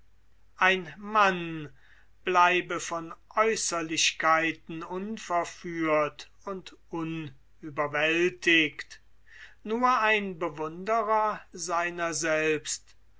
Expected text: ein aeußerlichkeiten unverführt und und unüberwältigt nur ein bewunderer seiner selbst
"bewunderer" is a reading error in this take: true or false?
false